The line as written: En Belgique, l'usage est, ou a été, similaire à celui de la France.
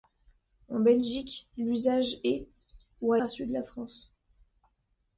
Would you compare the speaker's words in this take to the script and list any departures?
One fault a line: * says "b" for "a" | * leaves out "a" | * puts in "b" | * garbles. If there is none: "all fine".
* leaves out "été similaire"